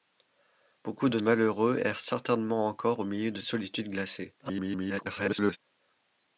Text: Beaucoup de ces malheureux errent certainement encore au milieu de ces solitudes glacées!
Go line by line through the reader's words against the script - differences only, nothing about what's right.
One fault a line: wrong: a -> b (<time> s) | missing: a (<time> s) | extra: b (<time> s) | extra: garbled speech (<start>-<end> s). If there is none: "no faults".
missing: ces (1.2 s)
missing: ces (3.4 s)
extra: garbled speech (4.4-5.6 s)